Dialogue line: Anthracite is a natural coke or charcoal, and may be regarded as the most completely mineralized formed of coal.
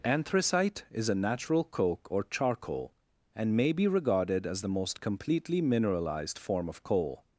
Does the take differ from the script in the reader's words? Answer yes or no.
yes